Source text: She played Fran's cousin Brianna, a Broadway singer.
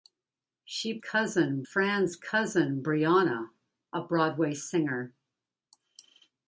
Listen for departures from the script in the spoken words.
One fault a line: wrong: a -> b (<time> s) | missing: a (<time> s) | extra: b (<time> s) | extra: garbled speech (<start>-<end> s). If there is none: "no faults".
wrong: played -> cousin (1.0 s)